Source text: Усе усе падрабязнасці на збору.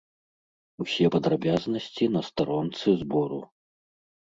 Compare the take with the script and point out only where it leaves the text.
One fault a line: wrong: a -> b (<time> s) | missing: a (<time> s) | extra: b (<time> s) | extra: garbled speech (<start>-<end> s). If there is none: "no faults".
missing: усе (1.1 s)
extra: старонцы (2.3 s)